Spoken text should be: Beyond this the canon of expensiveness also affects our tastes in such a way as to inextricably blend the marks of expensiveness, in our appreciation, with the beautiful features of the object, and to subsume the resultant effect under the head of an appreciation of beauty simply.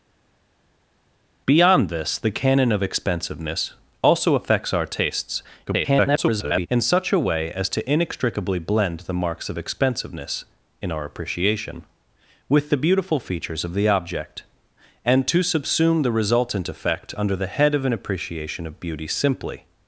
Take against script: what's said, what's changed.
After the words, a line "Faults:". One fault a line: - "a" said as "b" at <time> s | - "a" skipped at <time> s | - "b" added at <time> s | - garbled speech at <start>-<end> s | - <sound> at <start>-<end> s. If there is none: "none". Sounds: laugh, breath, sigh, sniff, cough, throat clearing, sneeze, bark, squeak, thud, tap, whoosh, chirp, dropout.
Beyond this the canon of expensiveness also affects our tastes [garbled] in such a way as to inextricably blend the marks of expensiveness, in our appreciation, with the beautiful features of the object, and to subsume the resultant effect under the head of an appreciation of beauty simply.
Faults:
- garbled speech at 5.7-6.7 s